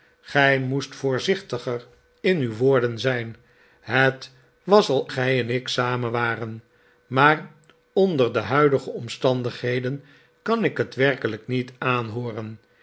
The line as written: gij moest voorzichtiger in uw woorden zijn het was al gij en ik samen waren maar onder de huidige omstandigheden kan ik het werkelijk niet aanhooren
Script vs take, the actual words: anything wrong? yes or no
no